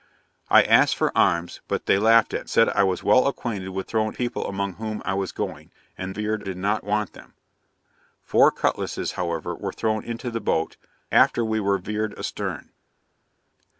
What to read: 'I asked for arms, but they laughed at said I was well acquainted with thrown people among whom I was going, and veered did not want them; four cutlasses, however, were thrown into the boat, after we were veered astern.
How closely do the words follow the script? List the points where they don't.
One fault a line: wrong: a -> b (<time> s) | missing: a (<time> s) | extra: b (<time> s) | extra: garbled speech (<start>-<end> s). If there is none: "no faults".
no faults